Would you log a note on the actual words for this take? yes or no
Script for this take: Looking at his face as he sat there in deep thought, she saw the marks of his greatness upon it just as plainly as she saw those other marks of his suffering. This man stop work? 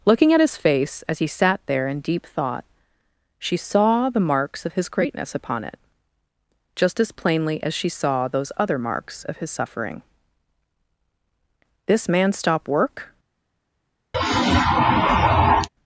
no